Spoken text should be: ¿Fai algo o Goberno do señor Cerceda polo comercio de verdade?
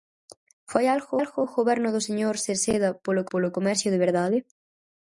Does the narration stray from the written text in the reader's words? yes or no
yes